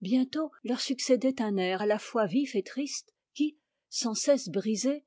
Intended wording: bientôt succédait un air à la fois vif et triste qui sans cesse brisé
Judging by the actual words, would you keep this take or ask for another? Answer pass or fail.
fail